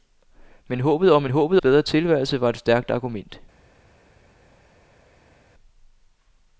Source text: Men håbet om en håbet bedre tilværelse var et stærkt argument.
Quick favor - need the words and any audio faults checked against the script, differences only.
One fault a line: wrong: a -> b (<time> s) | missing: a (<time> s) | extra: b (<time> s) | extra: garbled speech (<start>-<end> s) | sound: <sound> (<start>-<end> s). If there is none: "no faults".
no faults